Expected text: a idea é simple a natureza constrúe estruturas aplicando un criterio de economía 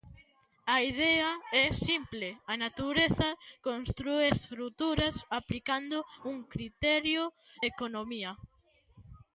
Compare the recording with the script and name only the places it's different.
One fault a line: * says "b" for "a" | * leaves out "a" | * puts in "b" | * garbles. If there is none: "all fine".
* leaves out "de"